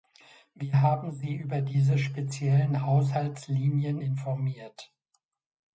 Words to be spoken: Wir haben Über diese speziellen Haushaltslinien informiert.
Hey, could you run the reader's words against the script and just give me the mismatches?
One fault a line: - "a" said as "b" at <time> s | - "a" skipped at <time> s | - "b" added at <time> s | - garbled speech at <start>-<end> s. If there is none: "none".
- "Sie" added at 1.1 s